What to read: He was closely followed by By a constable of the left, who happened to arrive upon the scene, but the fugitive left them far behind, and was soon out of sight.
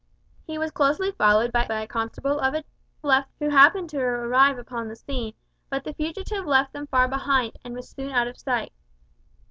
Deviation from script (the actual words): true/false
false